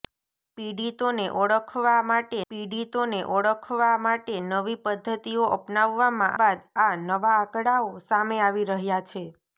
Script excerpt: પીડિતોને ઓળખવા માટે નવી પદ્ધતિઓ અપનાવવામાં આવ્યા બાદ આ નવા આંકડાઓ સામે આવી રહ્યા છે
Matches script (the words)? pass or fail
fail